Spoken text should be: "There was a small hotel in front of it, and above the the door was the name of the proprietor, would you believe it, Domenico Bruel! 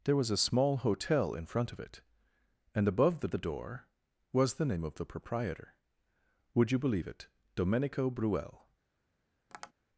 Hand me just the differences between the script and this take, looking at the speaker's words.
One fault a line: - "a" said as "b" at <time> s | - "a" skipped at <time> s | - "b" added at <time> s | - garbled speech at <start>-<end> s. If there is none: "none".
none